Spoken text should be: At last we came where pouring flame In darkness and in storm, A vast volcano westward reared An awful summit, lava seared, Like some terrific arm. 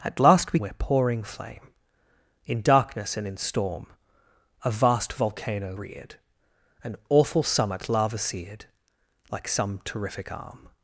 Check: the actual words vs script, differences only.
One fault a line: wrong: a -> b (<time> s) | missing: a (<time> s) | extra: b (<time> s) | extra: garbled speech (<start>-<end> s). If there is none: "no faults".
missing: came (0.6 s)
missing: westward (5.8 s)